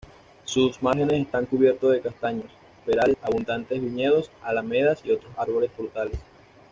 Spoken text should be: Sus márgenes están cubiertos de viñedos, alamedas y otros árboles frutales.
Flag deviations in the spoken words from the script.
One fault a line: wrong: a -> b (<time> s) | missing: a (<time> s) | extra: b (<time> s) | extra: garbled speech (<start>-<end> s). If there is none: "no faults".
extra: castaños perales abundantes (2.0 s)